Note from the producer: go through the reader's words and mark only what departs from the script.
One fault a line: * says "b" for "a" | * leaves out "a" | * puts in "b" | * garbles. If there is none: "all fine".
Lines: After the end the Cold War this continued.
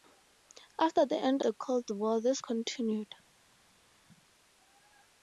all fine